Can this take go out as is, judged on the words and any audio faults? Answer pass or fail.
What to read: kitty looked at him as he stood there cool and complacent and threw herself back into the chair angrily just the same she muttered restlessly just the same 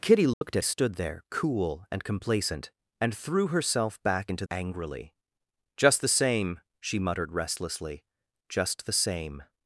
fail